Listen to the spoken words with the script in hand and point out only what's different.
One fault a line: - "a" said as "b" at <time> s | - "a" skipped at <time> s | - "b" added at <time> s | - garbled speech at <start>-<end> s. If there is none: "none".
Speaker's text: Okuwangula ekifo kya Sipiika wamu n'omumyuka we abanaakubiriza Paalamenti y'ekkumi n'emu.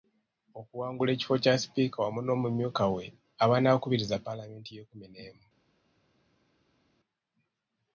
none